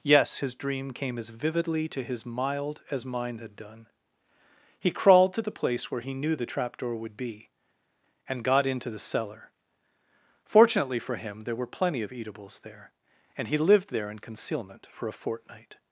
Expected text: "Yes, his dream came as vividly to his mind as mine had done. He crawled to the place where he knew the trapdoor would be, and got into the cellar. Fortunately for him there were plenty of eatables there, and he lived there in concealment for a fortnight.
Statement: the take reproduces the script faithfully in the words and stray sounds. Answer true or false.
false